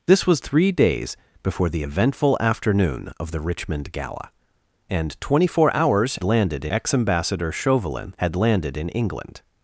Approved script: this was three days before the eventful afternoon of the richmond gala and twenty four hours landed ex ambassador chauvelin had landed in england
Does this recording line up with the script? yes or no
yes